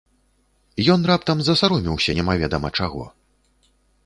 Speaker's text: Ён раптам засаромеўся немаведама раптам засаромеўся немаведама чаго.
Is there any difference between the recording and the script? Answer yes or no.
yes